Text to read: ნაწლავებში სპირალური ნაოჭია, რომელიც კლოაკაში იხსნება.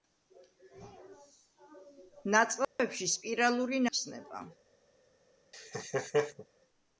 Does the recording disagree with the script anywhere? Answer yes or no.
yes